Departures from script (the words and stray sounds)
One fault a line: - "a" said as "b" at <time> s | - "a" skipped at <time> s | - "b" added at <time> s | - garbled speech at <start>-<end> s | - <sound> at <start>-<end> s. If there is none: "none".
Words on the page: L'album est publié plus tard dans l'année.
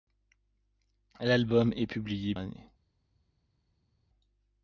- "plus tard dans" skipped at 2.3 s